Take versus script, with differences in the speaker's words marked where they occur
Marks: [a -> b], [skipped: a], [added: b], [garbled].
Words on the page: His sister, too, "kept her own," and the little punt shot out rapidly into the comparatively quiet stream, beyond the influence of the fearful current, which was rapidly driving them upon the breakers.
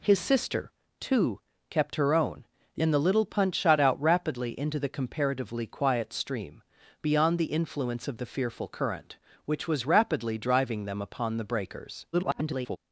His sister, too, "kept her own," and the little punt shot out rapidly into the comparatively quiet stream, beyond the influence of the fearful current, which was rapidly driving them upon the breakers. [garbled]